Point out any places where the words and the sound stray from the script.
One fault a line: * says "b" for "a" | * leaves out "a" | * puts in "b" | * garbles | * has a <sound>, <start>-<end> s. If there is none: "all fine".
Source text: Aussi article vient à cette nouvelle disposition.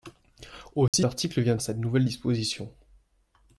* has a dropout, 0.9-0.9 s